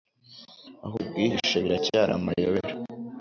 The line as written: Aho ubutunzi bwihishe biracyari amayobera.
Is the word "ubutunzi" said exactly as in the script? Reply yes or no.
no